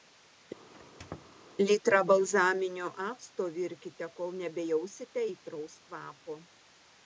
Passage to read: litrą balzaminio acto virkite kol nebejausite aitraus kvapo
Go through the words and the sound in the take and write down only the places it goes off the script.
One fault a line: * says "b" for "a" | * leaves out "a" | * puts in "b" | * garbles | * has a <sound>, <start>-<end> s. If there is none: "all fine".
* has a squeak, 0.7-1.4 s